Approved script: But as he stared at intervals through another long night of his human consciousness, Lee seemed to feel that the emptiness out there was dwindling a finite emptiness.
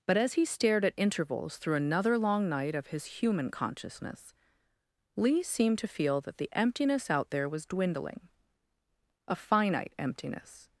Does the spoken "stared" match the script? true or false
true